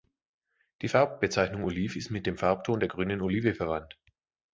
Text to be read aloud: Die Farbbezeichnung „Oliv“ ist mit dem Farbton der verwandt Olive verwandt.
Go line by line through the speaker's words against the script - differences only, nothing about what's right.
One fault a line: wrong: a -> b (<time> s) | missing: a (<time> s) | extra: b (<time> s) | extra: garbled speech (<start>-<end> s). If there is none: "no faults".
wrong: verwandt -> grünen (2.9 s)